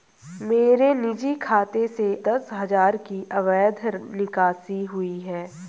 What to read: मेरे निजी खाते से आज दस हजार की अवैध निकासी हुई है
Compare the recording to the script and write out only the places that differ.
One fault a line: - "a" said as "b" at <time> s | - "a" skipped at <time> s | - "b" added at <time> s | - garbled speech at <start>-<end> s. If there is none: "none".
- "आज" skipped at 2.1 s